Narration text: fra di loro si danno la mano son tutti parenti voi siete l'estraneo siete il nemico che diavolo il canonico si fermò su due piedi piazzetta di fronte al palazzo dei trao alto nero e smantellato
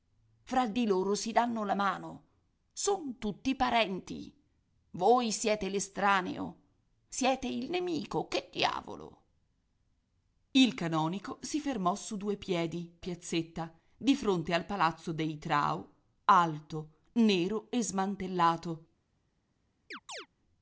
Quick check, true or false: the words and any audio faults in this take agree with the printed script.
false